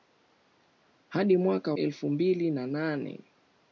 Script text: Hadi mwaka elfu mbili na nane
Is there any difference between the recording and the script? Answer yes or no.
no